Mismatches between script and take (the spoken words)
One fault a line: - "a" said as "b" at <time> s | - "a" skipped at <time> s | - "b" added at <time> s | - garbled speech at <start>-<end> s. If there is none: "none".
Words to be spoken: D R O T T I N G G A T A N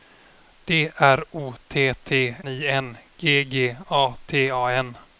none